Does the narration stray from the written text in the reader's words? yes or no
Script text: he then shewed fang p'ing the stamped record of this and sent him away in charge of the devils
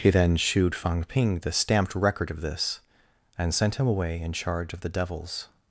no